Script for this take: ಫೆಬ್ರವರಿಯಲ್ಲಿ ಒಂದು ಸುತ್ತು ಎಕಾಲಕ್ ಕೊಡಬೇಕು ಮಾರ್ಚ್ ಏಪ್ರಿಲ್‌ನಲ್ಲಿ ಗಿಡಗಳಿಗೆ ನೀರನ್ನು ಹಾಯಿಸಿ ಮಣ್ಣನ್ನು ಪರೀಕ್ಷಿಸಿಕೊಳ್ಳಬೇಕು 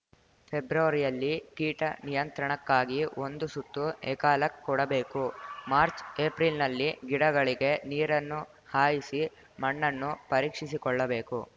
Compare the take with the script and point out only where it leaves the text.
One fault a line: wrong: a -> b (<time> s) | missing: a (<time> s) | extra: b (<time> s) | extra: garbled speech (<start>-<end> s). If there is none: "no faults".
extra: ಕೀಟ ನಿಯಂತ್ರಣಕ್ಕಾಗಿ (1.6 s)